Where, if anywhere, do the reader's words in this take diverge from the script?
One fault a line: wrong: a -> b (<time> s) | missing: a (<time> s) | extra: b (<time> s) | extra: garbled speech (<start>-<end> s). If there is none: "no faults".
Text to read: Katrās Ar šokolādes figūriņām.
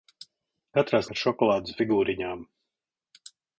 no faults